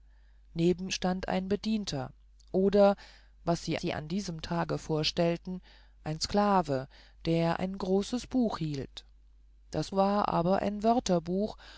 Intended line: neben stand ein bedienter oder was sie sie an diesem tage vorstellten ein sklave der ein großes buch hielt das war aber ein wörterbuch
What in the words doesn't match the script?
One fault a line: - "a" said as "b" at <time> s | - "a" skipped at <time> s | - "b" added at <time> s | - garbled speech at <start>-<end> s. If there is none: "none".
none